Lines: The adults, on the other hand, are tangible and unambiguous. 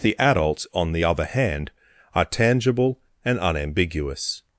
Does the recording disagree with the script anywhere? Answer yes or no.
no